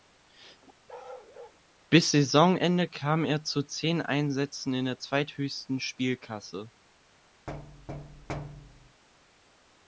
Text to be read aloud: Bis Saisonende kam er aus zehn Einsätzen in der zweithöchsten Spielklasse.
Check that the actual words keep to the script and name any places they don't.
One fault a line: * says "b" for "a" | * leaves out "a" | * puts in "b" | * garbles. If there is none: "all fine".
* says "zu" for "aus"